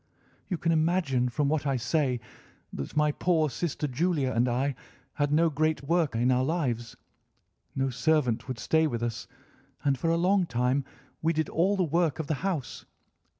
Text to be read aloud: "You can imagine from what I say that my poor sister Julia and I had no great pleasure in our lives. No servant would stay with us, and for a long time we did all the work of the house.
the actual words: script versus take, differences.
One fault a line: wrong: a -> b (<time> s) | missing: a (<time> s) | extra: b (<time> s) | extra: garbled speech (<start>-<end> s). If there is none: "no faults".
wrong: pleasure -> work (5.8 s)